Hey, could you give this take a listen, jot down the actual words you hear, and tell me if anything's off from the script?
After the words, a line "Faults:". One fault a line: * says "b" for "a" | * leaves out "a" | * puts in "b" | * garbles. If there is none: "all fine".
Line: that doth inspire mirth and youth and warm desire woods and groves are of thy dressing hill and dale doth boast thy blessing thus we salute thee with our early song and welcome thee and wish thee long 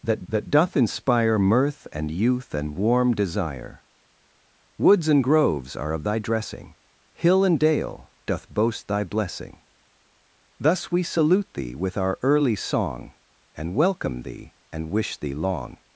that that doth inspire mirth and youth and warm desire woods and groves are of thy dressing hill and dale doth boast thy blessing thus we salute thee with our early song and welcome thee and wish thee long
Faults:
* puts in "that"